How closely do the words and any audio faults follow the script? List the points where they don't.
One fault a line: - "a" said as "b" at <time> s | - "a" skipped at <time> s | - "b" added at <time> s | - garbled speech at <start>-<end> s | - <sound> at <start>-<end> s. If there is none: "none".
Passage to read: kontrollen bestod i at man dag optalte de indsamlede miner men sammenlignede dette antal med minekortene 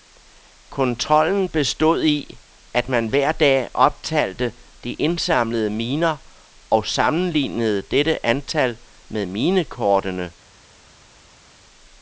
- "hver" added at 3.1 s
- "men" said as "og" at 6.7 s